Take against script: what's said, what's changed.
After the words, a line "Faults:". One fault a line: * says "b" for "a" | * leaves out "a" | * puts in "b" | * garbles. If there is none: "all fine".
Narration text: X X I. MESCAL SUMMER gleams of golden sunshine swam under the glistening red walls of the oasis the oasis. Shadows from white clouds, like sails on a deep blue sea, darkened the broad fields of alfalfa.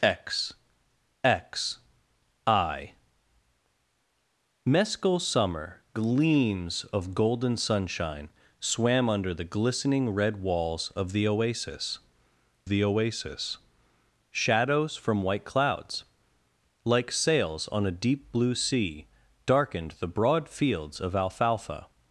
X X I. MESCAL SUMMER gleams of golden sunshine swam under the glistening red walls of the oasis the oasis. Shadows from white clouds, like sails on a deep blue sea, darkened the broad fields of alfalfa.
Faults:
all fine